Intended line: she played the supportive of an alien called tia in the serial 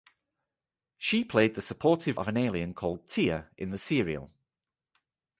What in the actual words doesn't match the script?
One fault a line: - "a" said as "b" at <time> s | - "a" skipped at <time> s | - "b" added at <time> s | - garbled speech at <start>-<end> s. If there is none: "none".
none